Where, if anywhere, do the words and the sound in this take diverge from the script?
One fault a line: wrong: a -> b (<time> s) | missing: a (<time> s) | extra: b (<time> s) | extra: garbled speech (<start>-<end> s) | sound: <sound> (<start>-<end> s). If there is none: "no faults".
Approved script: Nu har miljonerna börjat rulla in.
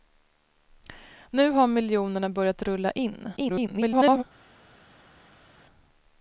extra: garbled speech (3.4-4.2 s)